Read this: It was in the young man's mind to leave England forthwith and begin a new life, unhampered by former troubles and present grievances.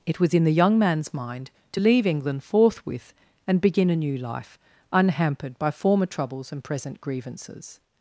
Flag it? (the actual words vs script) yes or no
no